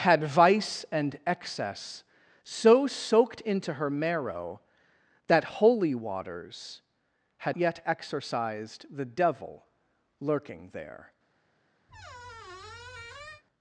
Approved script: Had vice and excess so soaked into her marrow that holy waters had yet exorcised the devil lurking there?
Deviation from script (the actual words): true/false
false